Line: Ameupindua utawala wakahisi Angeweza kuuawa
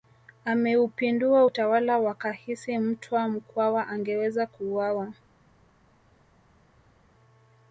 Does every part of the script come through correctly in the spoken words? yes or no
no